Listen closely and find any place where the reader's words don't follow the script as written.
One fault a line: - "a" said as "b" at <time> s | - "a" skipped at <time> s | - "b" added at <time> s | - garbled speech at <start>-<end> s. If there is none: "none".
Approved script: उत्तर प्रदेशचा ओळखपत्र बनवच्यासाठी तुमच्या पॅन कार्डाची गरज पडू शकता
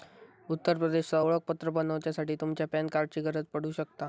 none